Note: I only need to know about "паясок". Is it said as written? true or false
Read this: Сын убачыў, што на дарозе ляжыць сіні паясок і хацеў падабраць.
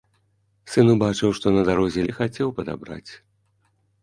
false